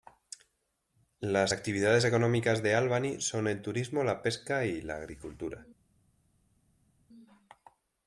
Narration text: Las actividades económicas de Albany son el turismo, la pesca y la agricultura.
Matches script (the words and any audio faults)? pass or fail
pass